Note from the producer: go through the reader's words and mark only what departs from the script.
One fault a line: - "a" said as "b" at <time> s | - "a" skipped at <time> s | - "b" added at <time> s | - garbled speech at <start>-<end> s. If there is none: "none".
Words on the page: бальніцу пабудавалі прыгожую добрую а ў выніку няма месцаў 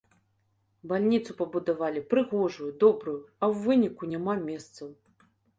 none